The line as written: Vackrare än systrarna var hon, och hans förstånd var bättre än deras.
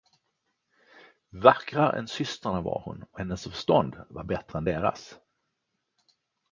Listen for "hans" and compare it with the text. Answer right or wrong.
wrong